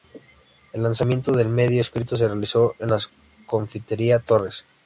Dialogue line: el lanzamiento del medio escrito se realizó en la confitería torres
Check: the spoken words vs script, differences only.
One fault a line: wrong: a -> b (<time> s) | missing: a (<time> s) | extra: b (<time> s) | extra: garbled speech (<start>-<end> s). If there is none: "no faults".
no faults